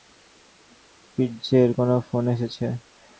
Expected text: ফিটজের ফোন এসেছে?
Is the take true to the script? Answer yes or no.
no